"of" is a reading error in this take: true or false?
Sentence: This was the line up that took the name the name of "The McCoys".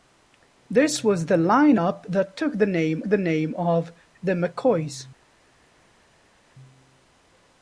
false